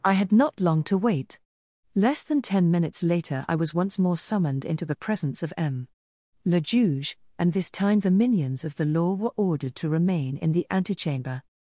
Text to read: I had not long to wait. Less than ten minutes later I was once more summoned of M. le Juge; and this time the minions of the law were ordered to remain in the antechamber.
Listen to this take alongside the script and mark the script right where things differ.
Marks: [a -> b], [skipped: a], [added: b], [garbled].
I had not long to wait. Less than ten minutes later I was once more summoned [added: into the presence] of M. le Juge; and this time the minions of the law were ordered to remain in the antechamber.